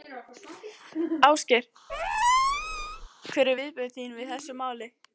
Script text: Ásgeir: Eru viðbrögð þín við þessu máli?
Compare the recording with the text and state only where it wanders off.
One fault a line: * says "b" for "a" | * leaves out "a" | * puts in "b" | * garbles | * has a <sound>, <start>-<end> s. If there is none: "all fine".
* has a squeak, 1.9-3.1 s
* puts in "Hver"